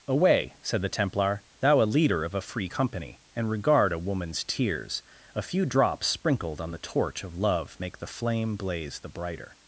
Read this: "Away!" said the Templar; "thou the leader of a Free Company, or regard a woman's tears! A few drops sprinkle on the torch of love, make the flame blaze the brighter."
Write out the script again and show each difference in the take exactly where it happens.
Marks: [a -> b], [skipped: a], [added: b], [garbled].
"Away!" said the Templar; "thou [the -> a] leader of a Free Company, [or -> and] regard a woman's tears! A few drops [sprinkle -> sprinkled] on the torch of love, make the flame blaze the brighter."